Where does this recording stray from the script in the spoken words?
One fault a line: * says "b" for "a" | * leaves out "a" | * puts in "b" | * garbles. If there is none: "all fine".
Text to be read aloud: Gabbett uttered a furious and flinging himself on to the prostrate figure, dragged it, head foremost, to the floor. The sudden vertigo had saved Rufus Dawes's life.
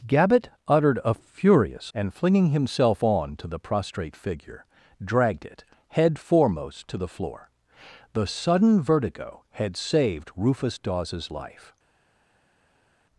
all fine